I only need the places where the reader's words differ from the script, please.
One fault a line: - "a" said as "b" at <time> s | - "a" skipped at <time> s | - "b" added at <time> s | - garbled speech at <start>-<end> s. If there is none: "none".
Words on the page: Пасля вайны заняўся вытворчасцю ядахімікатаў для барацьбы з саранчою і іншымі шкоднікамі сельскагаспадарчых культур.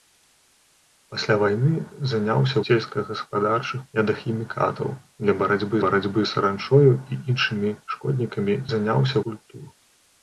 - "вытворчасцю" said as "сельскагаспадарчых" at 2.7 s
- "барацьбы" added at 5.8 s
- "сельскагаспадарчых" said as "заняўся" at 8.7 s